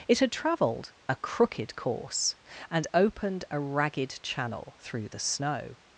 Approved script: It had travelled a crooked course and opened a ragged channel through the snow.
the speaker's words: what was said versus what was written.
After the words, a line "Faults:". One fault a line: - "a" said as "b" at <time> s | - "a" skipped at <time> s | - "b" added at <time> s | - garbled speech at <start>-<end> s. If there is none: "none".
It had travelled a crooked course and opened a ragged channel through the snow.
Faults:
none